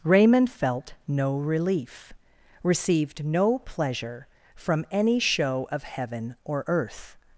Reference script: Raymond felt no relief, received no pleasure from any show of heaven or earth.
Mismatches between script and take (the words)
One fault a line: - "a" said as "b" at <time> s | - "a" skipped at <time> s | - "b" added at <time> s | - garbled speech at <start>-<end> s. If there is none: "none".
none